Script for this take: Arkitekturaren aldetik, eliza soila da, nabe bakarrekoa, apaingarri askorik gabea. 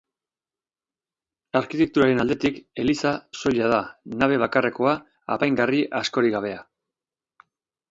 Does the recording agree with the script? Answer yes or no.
yes